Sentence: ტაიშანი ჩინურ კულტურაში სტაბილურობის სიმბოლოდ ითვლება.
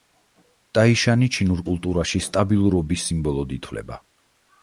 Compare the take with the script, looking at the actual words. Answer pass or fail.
pass